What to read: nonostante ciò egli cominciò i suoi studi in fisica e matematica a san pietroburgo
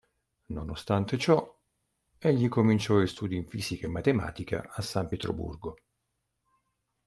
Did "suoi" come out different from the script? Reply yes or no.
yes